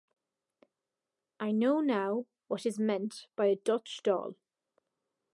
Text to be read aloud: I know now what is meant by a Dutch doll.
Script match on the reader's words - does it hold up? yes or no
yes